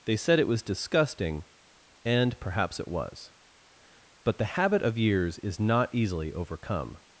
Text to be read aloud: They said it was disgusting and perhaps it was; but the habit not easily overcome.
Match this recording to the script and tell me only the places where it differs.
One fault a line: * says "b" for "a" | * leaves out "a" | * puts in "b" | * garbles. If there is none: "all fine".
* puts in "of years is"